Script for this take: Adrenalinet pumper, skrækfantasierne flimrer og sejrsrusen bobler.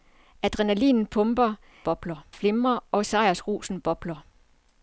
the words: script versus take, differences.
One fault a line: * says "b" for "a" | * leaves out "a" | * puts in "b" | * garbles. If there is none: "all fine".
* says "bobler" for "skrækfantasierne"